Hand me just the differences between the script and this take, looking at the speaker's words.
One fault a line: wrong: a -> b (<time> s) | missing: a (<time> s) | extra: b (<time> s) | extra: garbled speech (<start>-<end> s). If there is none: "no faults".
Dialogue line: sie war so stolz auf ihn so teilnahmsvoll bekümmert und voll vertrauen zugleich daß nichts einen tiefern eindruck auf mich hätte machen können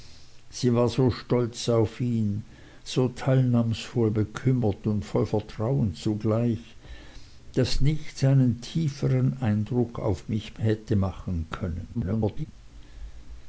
extra: garbled speech (11.9-12.5 s)